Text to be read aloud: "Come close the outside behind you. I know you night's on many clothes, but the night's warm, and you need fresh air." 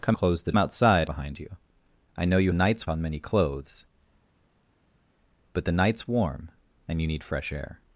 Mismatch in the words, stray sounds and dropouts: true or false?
false